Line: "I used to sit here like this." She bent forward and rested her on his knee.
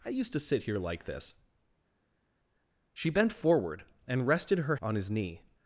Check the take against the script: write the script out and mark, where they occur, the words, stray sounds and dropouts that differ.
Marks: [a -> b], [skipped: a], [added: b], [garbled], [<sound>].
"I used to sit here like this." She bent forward and rested her on his knee.